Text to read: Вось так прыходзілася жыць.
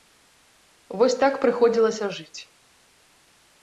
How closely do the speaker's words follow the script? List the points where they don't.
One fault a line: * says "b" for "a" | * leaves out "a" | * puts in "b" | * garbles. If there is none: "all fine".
all fine